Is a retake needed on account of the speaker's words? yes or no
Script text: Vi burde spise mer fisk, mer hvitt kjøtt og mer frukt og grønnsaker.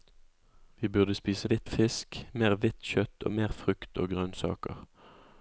yes